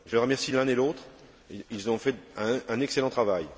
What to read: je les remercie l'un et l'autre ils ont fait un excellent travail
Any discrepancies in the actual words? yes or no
no